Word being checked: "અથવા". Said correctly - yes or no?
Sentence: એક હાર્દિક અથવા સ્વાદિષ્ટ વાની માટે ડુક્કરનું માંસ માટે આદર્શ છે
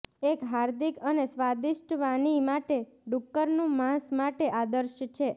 no